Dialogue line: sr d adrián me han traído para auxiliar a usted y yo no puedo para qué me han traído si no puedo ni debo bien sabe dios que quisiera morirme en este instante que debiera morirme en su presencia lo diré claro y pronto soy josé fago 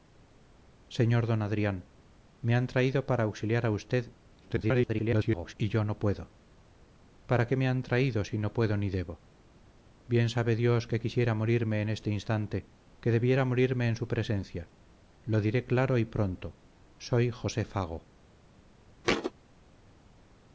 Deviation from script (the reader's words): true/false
true